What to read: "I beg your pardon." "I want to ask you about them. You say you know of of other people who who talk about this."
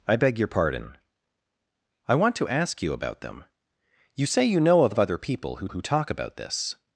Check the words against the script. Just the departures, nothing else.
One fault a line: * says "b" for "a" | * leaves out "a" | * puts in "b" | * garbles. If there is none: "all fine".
all fine